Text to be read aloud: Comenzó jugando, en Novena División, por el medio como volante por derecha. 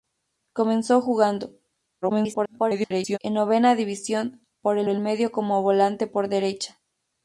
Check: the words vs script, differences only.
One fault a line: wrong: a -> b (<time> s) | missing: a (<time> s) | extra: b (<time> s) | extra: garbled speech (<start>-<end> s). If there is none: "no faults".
extra: garbled speech (2.0-3.2 s)
extra: el (4.9 s)